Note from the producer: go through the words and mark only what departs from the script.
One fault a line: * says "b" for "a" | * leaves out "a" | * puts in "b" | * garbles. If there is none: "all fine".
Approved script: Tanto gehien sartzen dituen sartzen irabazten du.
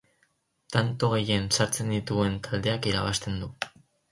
* says "taldeak" for "sartzen"